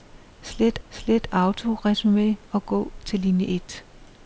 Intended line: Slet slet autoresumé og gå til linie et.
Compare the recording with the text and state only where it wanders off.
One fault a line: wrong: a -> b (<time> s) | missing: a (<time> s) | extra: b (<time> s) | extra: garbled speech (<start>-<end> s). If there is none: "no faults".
no faults